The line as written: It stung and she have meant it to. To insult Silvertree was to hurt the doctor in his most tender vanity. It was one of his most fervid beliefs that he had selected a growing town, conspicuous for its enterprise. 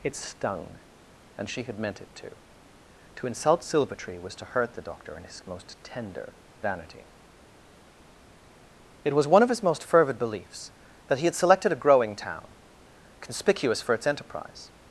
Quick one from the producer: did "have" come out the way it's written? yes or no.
no